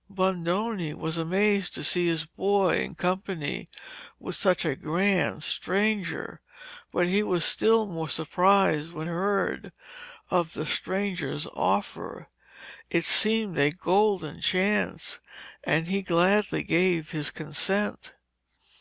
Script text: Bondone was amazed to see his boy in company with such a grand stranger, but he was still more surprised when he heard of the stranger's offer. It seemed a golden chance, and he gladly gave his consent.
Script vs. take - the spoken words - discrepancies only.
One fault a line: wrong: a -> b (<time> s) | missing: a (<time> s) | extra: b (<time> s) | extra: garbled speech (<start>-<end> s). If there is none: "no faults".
missing: he (9.1 s)